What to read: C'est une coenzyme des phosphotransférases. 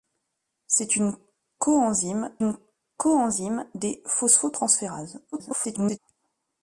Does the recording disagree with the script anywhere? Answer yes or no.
yes